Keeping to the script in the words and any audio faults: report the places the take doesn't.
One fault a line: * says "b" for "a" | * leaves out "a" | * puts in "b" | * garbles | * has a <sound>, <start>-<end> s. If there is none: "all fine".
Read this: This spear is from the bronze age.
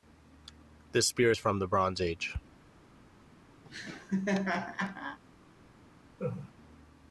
* has a laugh, 3.6-5.2 s
* has a laugh, 6.2-6.5 s